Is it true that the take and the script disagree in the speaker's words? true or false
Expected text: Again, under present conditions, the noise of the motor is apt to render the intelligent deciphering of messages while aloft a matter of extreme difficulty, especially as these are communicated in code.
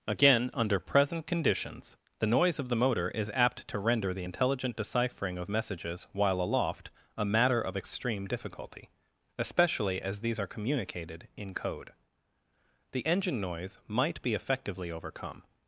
true